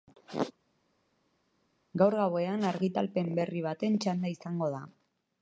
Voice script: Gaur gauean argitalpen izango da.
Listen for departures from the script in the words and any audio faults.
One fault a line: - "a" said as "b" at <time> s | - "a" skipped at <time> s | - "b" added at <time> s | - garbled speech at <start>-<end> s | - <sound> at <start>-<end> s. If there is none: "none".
- "berri baten txanda" added at 3.4 s